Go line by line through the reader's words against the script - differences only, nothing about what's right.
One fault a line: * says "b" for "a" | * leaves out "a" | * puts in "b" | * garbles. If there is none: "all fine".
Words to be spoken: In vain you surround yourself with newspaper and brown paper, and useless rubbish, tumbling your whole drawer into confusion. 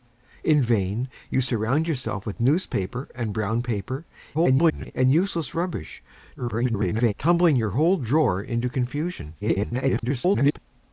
* garbles
* garbles
* garbles